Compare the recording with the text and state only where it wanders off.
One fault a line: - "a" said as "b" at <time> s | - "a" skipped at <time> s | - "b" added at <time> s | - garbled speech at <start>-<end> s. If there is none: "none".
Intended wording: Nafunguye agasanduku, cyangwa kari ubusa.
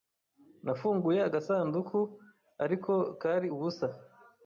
- "cyangwa" said as "ariko" at 2.6 s